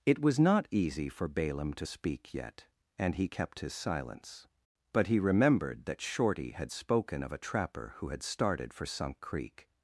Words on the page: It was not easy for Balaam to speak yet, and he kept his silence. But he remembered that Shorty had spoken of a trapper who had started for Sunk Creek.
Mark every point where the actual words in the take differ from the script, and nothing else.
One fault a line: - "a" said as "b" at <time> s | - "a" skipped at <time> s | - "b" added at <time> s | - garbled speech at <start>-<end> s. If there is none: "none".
none